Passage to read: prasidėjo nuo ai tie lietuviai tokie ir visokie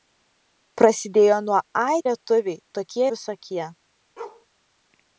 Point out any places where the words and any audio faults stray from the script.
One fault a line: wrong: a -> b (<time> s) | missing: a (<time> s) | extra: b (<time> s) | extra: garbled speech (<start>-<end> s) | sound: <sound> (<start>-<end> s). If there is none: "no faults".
missing: tie (2.0 s)
missing: ir (3.0 s)
sound: bark (4.2-4.5 s)